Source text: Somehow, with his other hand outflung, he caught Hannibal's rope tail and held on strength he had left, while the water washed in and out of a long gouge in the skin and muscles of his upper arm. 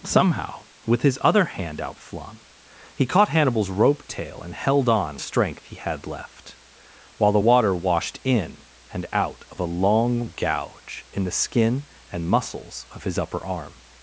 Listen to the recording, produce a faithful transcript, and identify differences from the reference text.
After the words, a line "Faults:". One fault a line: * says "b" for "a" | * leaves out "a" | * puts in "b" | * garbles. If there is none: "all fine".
Somehow, with his other hand outflung, he caught Hannibal's rope tail and held on strength he had left, while the water washed in and out of a long gouge in the skin and muscles of his upper arm.
Faults:
all fine